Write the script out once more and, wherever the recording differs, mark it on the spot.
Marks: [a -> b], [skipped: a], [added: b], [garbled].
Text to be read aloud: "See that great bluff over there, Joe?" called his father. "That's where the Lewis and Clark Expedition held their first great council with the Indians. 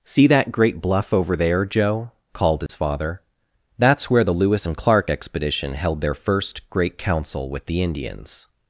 "See that great bluff over there, Joe?" called his father. "That's where the Lewis and Clark Expedition held their first great council with the Indians.